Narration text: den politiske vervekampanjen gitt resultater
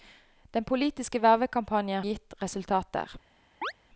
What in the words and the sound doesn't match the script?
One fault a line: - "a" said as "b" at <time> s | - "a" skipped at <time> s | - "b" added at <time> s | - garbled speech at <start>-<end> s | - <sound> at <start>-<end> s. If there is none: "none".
- chirp at 3.6-3.7 s